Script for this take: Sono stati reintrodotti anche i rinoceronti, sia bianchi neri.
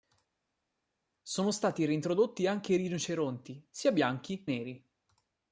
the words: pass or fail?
pass